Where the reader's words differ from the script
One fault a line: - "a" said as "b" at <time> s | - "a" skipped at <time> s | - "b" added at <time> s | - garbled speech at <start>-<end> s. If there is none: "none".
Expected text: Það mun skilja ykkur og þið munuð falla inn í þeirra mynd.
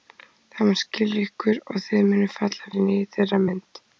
none